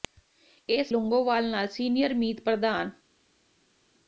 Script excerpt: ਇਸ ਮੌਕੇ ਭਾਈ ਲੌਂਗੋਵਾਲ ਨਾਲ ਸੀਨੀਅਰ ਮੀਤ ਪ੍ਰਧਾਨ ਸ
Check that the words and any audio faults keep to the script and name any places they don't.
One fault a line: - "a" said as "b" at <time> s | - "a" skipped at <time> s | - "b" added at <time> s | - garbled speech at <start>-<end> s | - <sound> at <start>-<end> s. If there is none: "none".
- "ਮੌਕੇ ਭਾਈ" skipped at 0.9 s